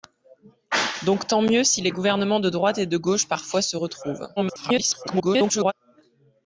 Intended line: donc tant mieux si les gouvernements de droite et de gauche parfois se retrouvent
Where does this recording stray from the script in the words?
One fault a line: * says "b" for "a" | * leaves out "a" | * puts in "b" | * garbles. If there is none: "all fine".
* garbles